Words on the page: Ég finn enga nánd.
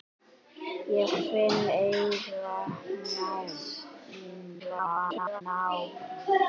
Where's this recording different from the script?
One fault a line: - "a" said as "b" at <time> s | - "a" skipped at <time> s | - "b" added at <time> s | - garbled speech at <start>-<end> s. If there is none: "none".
- garbled speech at 4.6-5.4 s